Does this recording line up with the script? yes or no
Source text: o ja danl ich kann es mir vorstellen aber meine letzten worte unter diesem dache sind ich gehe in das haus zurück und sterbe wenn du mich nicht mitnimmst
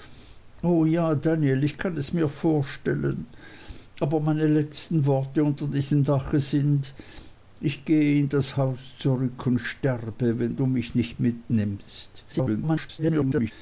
no